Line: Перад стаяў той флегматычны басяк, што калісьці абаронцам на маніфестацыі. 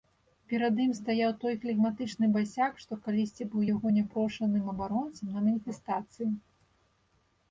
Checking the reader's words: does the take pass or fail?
fail